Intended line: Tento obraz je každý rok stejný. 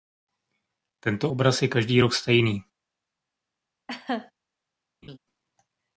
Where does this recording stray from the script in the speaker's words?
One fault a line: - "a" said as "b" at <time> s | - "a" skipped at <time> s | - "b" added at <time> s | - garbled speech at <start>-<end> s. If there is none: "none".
none